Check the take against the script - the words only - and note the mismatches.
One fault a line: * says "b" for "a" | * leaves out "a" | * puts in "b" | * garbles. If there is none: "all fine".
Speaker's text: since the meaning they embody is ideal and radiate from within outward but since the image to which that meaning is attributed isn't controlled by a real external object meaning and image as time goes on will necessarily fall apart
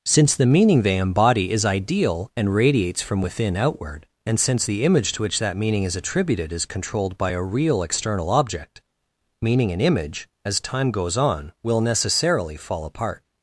* says "radiates" for "radiate"
* says "and" for "but"
* says "is" for "isn't"